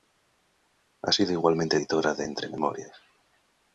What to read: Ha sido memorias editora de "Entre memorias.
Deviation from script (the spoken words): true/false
true